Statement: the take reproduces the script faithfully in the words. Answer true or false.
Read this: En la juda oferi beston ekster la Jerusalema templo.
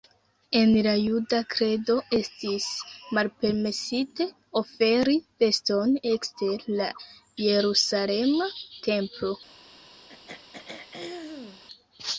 false